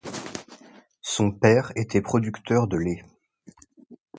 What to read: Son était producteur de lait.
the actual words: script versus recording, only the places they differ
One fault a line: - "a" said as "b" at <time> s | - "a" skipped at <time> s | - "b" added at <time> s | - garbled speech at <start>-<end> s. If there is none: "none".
- "père" added at 1.3 s